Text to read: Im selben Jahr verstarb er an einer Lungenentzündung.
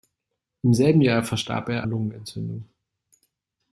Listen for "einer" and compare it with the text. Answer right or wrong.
wrong